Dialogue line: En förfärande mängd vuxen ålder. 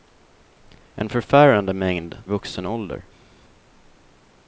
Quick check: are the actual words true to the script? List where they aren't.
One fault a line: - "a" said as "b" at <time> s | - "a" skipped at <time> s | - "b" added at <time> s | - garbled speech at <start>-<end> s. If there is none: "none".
none